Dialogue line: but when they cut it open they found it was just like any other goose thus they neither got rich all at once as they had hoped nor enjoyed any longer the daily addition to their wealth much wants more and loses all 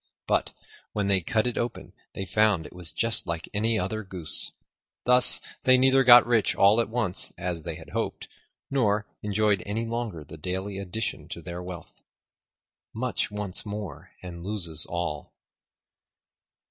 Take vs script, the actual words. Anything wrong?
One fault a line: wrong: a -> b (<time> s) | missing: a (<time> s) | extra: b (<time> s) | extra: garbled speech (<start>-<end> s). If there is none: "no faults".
no faults